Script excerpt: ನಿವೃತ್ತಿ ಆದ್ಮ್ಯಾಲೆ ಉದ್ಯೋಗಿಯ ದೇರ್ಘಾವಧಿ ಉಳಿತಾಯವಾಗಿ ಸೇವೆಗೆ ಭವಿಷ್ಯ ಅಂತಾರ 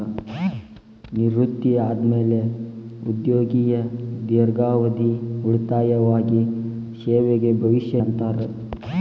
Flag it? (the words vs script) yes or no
no